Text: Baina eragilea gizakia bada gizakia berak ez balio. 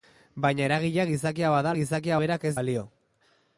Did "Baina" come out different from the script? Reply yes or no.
no